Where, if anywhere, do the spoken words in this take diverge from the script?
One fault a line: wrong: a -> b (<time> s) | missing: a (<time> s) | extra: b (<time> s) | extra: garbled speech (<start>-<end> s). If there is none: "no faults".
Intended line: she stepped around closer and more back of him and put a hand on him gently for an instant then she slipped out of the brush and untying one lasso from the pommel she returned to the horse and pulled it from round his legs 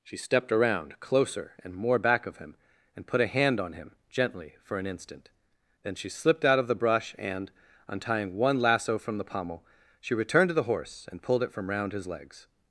no faults